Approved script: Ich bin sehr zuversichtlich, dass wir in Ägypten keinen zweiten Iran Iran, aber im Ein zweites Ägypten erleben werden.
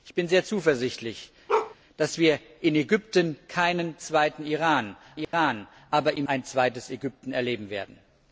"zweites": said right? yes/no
yes